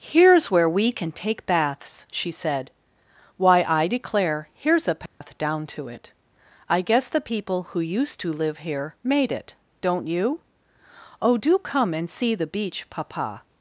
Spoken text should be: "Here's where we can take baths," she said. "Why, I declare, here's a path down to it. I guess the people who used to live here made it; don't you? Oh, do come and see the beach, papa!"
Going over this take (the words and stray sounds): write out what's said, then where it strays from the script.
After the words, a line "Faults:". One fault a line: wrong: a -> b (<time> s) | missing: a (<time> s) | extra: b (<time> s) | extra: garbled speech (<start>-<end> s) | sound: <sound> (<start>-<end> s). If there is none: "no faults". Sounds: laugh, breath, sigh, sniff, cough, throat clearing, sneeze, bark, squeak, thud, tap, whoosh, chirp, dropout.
"Here's where we can take baths," she said. "Why, I declare, here's a path down to it. I guess the people who used to live here made it; don't you? Oh, do come and see the beach, papa!"
Faults:
sound: dropout (5.1-5.2 s)